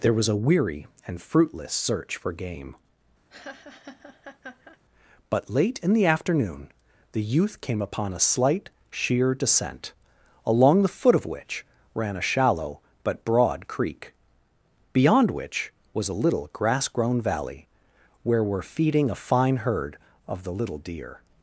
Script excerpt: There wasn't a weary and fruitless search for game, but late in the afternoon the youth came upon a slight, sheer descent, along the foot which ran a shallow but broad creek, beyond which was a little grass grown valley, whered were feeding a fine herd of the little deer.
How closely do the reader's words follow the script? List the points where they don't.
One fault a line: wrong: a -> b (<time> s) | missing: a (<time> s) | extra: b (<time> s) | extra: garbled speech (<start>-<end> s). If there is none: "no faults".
wrong: wasn't -> was (0.1 s)
extra: of (11.1 s)
wrong: whered -> where (18.2 s)